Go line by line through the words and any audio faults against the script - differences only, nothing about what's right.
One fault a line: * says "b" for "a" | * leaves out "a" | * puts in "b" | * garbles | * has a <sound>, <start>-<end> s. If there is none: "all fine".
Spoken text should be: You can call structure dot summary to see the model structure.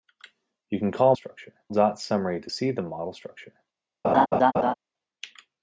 * has a laugh, 4.0-4.7 s